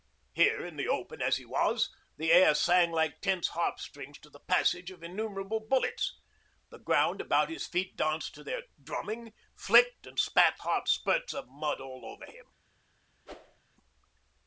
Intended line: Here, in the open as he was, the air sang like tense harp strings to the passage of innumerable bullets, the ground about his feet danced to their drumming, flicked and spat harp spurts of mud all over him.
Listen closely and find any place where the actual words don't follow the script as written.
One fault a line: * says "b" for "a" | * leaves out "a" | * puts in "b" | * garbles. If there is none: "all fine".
all fine